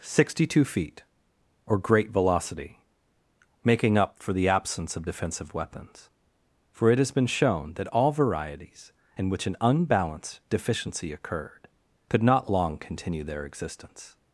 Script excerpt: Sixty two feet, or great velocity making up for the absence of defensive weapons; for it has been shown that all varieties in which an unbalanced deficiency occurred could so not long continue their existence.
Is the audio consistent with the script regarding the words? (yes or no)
no